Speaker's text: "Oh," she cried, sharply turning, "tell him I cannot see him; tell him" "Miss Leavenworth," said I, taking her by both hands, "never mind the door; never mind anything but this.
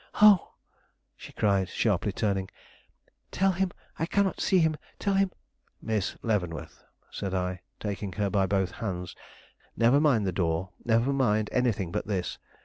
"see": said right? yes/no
yes